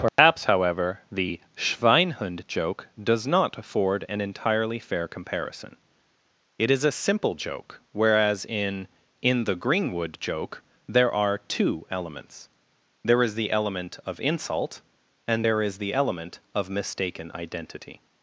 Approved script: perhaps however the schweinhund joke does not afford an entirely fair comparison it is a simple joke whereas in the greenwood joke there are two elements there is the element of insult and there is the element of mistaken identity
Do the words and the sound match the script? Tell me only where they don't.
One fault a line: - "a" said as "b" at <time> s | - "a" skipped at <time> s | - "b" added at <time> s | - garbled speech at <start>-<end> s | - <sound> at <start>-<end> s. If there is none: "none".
- dropout at 0.1-0.2 s
- "in" added at 9.2 s